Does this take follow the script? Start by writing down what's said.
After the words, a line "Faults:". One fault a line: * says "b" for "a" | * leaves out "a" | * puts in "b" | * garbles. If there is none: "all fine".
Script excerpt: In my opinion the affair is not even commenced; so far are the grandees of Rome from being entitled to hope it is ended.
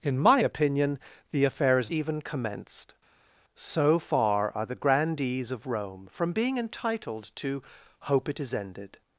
In my opinion the affair is even commenced; so far are the grandees of Rome from being entitled to hope it is ended.
Faults:
* leaves out "not"